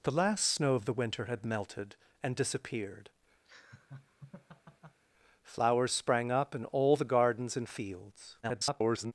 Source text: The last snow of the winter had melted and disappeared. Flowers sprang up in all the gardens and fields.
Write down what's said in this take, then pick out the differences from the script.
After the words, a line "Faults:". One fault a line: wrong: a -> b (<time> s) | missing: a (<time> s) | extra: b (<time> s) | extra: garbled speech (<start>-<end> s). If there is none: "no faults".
The last snow of the winter had melted and disappeared. Flowers sprang up in all the gardens and fields. [garbled]
Faults:
extra: garbled speech (8.4-9.1 s)